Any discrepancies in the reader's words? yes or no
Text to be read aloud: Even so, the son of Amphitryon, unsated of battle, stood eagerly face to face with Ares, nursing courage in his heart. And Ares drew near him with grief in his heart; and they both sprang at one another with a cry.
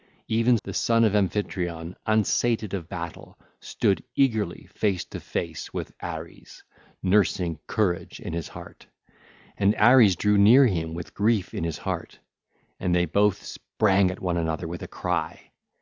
yes